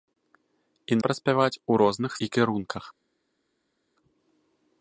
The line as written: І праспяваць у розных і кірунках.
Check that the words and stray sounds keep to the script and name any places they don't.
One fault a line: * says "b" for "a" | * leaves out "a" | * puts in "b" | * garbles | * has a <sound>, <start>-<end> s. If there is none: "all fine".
all fine